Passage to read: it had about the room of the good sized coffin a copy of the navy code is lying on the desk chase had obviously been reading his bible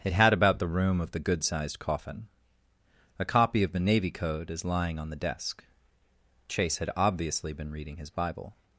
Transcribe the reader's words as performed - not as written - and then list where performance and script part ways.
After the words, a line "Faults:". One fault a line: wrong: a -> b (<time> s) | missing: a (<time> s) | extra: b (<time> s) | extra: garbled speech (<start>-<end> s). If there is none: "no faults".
it had about the room of the good sized coffin a copy of the navy code is lying on the desk chase had obviously been reading his bible
Faults:
no faults